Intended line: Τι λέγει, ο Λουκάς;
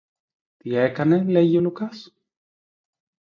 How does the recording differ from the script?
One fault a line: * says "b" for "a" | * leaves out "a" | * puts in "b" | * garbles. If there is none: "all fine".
* puts in "έκανε"